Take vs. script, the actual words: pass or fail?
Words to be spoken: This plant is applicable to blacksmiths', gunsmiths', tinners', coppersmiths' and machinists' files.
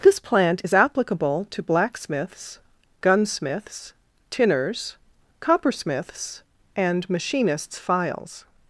pass